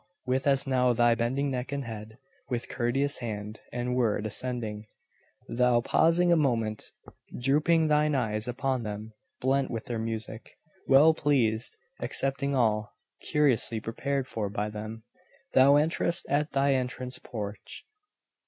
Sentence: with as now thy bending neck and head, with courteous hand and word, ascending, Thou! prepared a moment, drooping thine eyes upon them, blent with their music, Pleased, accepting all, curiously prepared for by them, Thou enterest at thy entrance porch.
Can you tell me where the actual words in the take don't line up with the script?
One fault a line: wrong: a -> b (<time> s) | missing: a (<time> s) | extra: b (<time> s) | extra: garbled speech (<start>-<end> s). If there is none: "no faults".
wrong: prepared -> pausing (5.8 s)
extra: Well (10.9 s)